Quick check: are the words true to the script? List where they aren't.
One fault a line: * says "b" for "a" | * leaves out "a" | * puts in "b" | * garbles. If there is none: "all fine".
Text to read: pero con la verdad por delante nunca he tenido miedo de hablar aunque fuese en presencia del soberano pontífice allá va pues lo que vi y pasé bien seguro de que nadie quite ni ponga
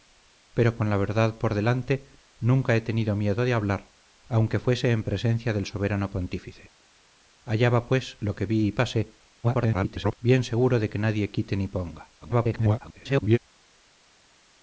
* garbles
* garbles